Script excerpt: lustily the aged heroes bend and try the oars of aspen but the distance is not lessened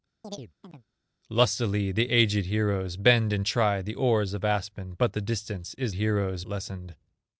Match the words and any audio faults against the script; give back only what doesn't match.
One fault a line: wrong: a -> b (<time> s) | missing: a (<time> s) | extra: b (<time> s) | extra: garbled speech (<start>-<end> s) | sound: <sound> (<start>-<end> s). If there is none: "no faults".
sound: chirp (0.2-0.8 s)
wrong: not -> heroes (6.0 s)